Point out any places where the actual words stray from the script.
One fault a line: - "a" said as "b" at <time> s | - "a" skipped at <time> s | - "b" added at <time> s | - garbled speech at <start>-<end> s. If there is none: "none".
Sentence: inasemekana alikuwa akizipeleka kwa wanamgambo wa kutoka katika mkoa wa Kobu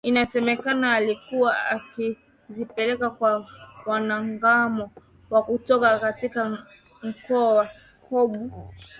none